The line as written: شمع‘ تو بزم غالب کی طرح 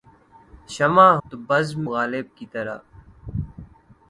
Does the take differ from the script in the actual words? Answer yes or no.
no